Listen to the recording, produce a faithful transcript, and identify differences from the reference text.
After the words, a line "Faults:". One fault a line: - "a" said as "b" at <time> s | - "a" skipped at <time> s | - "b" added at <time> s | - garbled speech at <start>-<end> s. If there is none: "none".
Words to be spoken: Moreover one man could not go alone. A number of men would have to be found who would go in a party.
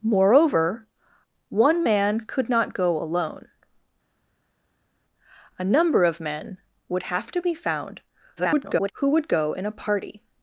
Moreover one man could not go alone. A number of men would have to be found [garbled] who would go in a party.
Faults:
- garbled speech at 8.4-8.9 s